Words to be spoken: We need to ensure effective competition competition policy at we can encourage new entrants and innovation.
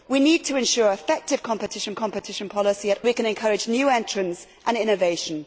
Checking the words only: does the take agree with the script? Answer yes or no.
yes